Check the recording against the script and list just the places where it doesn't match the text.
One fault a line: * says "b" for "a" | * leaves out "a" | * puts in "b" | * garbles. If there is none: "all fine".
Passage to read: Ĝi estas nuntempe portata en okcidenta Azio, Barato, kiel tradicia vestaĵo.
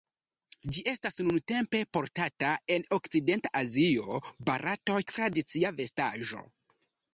* leaves out "kiel"